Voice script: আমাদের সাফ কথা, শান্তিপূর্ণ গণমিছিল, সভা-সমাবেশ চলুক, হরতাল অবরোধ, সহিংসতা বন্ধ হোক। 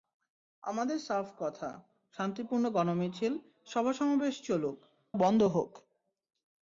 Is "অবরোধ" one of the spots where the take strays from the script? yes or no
yes